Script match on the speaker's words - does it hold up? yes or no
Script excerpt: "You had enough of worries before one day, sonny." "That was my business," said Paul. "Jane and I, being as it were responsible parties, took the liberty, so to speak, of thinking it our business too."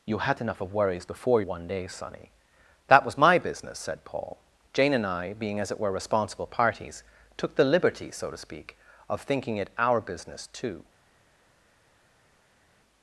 yes